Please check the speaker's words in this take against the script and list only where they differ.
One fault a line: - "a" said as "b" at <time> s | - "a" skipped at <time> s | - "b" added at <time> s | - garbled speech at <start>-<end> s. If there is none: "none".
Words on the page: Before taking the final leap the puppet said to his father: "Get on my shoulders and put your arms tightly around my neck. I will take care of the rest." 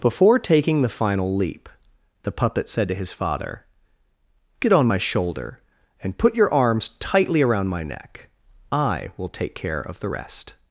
- "shoulders" said as "shoulder" at 5.0 s